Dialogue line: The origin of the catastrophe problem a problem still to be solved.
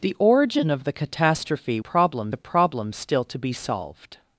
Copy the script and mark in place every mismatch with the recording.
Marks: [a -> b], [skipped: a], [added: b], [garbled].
The origin of the catastrophe problem a problem still to be solved.